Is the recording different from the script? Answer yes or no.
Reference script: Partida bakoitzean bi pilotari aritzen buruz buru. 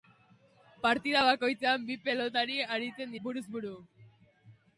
no